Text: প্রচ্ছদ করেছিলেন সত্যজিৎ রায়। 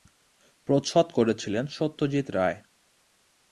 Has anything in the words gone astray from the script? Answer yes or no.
no